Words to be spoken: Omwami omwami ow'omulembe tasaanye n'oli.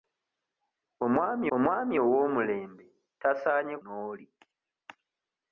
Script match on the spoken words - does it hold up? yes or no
yes